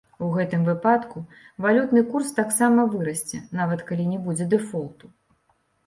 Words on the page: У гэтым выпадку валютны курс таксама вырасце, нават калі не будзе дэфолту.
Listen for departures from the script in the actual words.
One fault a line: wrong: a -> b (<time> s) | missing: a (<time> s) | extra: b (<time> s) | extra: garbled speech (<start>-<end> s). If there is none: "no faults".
no faults